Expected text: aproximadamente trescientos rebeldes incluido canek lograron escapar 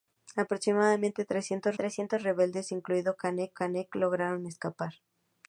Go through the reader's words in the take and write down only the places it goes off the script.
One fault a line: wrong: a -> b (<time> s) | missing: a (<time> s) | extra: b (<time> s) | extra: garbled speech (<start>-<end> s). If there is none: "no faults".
extra: trescientos (1.7 s)
extra: canek (3.5 s)